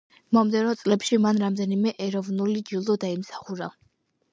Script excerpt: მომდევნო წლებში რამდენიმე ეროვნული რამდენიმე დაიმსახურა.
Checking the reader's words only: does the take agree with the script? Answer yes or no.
no